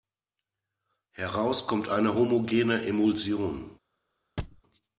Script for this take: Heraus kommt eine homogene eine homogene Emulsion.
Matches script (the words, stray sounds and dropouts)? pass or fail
fail